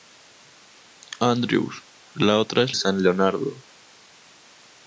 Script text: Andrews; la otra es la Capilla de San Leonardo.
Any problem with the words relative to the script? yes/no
yes